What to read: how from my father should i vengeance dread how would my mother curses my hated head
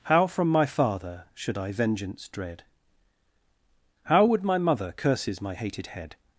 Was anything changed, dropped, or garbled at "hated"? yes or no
no